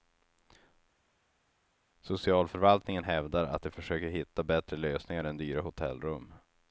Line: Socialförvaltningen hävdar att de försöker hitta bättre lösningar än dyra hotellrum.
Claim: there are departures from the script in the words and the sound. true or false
false